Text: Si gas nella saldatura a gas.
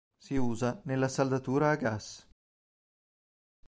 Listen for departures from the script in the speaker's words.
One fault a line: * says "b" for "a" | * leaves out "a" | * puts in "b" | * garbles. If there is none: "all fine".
* says "usa" for "gas"